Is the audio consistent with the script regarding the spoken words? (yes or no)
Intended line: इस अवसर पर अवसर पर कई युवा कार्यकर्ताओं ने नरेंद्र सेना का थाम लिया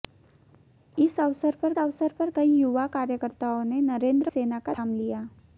yes